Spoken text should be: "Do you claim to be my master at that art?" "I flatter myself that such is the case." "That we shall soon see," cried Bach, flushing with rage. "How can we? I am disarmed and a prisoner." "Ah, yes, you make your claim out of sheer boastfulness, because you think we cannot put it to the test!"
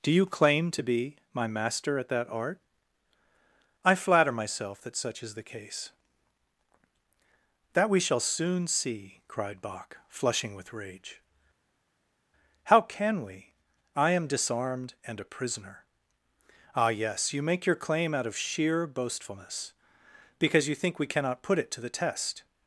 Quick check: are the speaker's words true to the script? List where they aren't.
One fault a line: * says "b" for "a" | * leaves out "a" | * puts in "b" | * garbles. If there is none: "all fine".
all fine